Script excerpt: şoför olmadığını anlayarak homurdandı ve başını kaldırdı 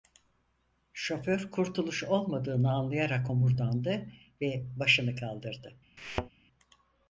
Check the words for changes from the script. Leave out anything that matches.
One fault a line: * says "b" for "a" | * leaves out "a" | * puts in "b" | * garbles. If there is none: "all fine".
* puts in "kurtuluş"